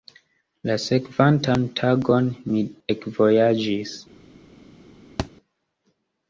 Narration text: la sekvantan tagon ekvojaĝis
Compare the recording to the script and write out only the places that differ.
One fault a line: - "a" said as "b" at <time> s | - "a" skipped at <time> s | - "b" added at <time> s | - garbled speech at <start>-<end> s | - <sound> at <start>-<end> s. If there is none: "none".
- "mi" added at 2.5 s
- thud at 5.2-5.3 s